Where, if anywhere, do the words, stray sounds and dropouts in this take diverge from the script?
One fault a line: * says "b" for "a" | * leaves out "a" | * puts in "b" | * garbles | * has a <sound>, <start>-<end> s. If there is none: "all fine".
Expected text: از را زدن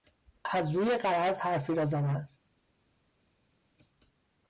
* puts in "روی غرض حرفی"